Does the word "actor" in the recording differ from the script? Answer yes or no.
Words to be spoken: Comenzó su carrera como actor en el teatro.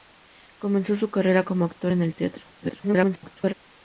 no